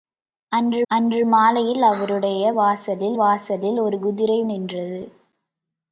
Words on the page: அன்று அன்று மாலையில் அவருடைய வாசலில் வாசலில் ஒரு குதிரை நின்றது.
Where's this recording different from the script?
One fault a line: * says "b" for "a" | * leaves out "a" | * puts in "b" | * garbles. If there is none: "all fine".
all fine